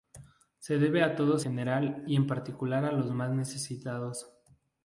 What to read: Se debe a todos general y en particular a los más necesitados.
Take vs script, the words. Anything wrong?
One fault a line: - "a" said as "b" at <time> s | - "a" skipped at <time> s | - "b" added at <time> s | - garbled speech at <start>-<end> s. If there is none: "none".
none